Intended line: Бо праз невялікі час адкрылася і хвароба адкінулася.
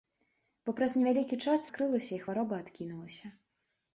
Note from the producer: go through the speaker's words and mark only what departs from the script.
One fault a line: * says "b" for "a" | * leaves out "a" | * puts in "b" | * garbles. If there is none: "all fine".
all fine